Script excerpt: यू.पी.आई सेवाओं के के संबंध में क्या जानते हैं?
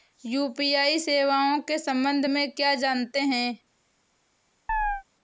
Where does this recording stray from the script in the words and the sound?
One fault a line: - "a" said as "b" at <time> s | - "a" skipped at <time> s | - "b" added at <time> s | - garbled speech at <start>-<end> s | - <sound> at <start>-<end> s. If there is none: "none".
- "के" skipped at 1.8 s
- chirp at 4.7-5.0 s